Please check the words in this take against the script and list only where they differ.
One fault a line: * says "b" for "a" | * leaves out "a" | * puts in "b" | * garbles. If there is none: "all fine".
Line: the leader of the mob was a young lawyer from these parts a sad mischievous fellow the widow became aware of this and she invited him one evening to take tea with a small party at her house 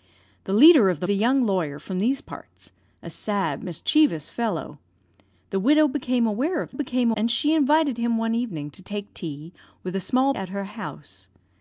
* leaves out "mob was"
* says "became" for "this"
* leaves out "party"